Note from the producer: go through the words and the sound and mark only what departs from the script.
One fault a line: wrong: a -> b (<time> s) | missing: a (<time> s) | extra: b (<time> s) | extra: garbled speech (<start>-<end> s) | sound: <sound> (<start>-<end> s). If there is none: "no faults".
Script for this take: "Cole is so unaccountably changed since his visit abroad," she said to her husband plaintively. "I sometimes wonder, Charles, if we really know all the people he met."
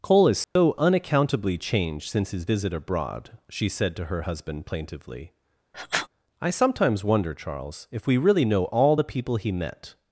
sound: dropout (0.4-0.6 s)
sound: sniff (5.7-6.1 s)